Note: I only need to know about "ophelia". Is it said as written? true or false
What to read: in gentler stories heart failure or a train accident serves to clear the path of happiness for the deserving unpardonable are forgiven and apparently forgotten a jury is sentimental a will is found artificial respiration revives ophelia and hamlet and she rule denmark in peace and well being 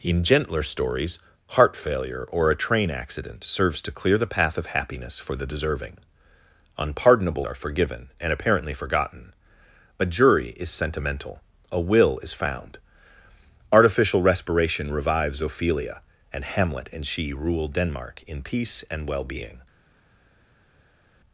true